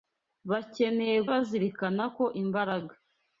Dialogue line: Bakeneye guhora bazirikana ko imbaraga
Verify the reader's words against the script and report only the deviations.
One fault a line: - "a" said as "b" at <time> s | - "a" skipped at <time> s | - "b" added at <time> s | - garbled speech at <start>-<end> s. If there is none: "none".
- "guhora" skipped at 1.2 s